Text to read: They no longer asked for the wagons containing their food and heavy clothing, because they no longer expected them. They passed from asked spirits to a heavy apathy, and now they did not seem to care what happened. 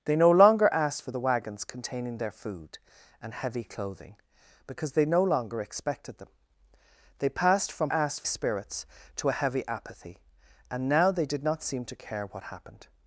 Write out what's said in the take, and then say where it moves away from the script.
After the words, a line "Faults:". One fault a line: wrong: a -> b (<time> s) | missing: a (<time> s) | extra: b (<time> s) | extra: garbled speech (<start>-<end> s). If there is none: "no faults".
They no longer asked for the wagons containing their food and heavy clothing, because they no longer expected them. They passed from asked spirits to a heavy apathy, and now they did not seem to care what happened.
Faults:
no faults